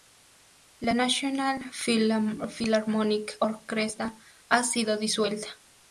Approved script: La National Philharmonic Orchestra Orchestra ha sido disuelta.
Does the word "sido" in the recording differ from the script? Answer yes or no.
no